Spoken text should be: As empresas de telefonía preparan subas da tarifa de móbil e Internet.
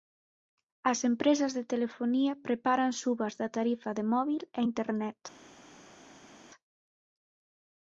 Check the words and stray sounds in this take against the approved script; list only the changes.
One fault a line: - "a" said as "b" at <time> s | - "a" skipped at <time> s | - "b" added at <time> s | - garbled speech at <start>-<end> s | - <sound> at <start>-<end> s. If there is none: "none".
none